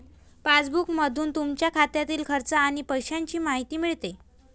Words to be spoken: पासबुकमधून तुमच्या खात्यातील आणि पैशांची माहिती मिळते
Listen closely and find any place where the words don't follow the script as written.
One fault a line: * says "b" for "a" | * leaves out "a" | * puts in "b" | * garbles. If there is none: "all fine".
* puts in "खर्च"